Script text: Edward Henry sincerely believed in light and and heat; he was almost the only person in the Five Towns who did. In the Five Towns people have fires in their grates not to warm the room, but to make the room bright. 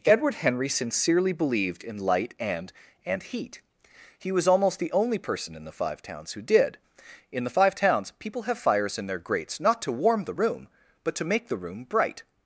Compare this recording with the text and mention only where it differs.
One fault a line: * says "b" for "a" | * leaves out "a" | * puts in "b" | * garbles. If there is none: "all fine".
all fine